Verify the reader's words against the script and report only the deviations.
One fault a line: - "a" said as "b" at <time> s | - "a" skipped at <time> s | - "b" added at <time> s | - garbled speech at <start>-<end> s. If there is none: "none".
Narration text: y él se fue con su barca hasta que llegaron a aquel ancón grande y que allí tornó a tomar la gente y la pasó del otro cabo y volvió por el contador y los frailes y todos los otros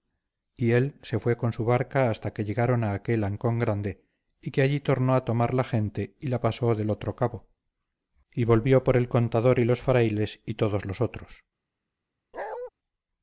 none